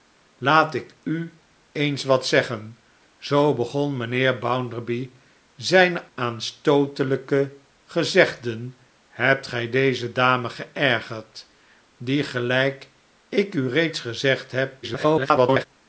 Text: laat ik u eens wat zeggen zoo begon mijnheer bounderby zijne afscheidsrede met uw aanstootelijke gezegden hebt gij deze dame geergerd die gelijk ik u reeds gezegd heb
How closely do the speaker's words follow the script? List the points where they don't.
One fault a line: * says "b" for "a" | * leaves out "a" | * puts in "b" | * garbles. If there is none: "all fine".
* leaves out "afscheidsrede met uw"
* garbles